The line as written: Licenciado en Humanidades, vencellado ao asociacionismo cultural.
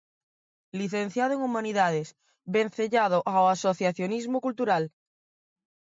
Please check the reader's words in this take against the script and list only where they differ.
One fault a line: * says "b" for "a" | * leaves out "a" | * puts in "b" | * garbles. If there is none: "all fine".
all fine